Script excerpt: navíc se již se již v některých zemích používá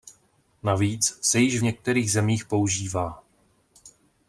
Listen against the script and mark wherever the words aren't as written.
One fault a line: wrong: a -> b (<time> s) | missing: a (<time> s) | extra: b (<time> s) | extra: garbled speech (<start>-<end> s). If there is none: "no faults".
missing: se již (1.6 s)